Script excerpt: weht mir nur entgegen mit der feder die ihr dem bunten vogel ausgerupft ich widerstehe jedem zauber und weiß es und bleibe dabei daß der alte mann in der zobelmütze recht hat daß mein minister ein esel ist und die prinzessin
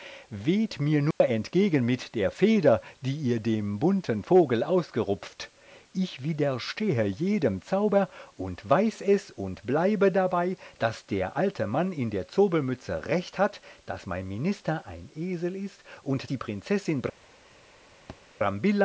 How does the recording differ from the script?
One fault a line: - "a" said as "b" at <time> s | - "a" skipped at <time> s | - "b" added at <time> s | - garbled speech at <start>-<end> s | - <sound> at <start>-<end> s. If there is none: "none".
- dropout at 1.1-1.2 s
- thud at 18.1-18.2 s